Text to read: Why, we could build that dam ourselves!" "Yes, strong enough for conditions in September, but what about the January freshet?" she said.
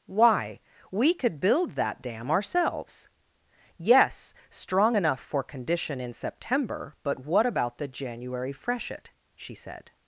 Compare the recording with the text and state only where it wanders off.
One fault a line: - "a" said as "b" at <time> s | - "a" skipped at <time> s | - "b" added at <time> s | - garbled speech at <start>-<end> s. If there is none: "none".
- "conditions" said as "condition" at 5.4 s